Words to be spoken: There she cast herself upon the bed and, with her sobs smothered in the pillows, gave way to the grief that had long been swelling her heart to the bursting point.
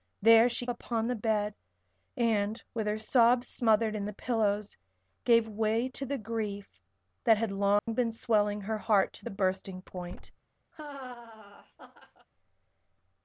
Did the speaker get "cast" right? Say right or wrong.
wrong